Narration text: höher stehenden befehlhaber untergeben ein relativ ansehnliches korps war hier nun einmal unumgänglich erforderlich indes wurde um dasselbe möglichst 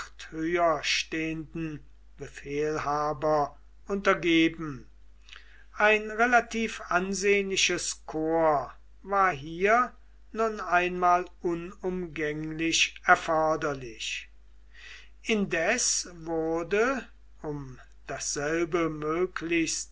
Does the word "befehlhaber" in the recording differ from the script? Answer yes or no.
no